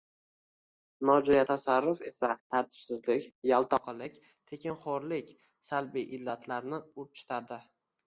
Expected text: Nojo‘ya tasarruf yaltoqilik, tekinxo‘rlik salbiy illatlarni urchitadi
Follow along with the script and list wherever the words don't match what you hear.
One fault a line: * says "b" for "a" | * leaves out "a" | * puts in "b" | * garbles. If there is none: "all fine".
* puts in "esa tartibsizlik"